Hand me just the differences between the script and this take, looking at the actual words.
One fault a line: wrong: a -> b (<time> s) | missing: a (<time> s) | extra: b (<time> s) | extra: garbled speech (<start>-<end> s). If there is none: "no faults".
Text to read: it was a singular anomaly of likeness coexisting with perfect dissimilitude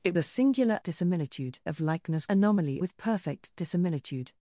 missing: was (0.1 s)
wrong: anomaly -> dissimilitude (0.8 s)
wrong: coexisting -> anomaly (2.3 s)